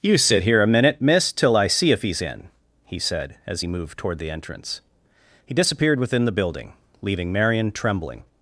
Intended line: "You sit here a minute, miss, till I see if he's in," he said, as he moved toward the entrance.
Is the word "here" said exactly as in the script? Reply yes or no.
yes